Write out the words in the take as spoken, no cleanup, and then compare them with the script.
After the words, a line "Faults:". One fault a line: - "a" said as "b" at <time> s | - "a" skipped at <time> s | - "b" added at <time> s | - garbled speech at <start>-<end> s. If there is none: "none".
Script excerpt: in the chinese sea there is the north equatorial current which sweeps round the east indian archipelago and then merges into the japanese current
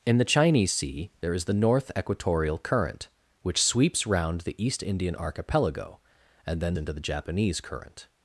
in the chinese sea there is the north equatorial current which sweeps round the east indian archipelago and then into the japanese current
Faults:
- "merges" skipped at 6.8 s